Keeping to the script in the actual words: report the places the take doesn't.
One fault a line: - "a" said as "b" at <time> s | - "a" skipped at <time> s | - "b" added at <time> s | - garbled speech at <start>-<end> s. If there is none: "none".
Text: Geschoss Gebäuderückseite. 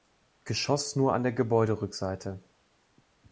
- "nur an der" added at 0.9 s